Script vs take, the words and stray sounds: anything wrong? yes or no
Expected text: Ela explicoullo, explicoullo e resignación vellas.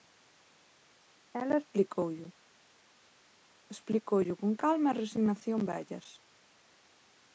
yes